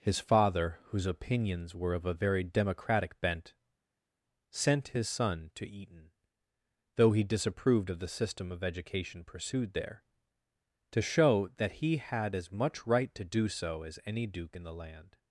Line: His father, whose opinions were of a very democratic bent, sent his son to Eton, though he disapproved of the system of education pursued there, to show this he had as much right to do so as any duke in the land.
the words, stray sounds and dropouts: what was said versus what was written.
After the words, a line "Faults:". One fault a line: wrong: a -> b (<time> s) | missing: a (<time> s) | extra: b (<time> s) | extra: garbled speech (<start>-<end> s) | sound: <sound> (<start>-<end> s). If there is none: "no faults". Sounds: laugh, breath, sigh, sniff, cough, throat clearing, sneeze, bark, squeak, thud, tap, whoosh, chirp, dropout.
His father, whose opinions were of a very democratic bent, sent his son to Eton, though he disapproved of the system of education pursued there, to show that he had as much right to do so as any duke in the land.
Faults:
wrong: this -> that (11.6 s)